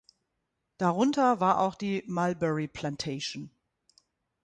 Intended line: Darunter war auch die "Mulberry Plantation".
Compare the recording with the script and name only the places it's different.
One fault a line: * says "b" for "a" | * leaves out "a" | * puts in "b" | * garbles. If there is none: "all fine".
all fine